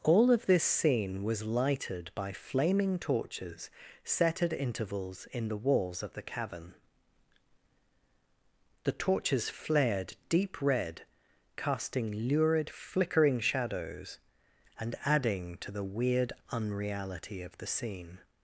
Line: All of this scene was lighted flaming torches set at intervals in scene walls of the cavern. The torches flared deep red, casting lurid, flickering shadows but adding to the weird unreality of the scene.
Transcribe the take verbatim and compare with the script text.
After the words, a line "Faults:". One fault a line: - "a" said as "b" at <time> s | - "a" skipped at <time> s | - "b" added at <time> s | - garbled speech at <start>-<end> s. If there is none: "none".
All of this scene was lighted by flaming torches set at intervals in the walls of the cavern. The torches flared deep red, casting lurid, flickering shadows and adding to the weird unreality of the scene.
Faults:
- "by" added at 2.1 s
- "scene" said as "the" at 5.5 s
- "but" said as "and" at 14.8 s